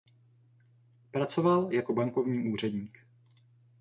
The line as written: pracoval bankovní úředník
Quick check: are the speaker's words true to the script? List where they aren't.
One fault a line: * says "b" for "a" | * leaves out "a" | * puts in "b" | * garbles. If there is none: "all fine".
* puts in "jako"